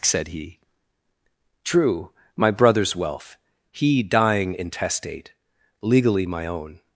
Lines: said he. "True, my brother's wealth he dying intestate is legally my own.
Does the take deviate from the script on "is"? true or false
true